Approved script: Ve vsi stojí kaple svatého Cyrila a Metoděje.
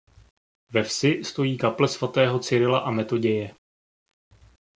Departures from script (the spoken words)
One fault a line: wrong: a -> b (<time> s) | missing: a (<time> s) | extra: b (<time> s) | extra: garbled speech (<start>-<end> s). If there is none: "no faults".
no faults